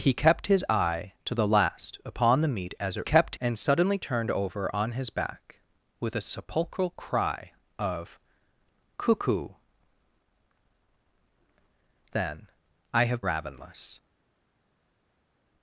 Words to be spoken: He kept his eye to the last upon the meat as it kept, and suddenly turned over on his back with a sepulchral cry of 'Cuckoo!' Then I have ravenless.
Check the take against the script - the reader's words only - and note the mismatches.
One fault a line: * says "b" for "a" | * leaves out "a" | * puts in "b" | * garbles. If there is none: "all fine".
all fine